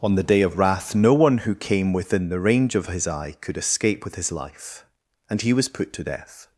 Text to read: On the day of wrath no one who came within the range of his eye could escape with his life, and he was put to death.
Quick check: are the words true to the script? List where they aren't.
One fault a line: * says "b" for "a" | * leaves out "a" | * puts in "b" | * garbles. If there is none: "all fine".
all fine